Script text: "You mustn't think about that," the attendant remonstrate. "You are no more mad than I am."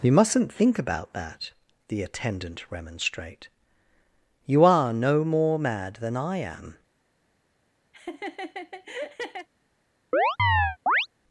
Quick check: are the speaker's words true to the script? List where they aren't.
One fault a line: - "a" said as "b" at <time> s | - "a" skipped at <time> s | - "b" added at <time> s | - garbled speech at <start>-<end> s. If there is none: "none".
none